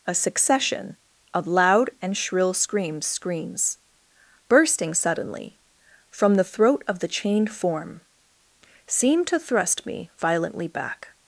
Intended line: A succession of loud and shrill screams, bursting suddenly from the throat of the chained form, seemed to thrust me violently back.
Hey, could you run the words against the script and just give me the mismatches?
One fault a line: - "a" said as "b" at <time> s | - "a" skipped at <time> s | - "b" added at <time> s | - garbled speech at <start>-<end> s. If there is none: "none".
- "screams" added at 3.0 s